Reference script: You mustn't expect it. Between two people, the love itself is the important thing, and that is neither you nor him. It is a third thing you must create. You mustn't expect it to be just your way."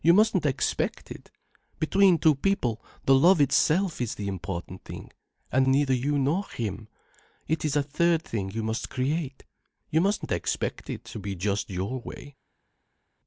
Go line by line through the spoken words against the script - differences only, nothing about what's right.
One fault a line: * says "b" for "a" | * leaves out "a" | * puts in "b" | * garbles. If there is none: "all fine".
* leaves out "that is"